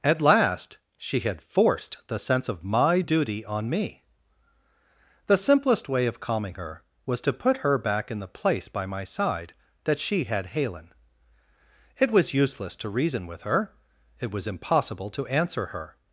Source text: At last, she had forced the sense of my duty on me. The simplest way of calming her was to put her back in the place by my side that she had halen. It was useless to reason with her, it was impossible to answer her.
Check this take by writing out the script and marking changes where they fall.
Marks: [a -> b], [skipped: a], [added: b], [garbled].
At last, she had forced the sense of my duty on me. The simplest way of calming her was to put her back in the place by my side that she had halen. It was useless to reason with her, it was impossible to answer her.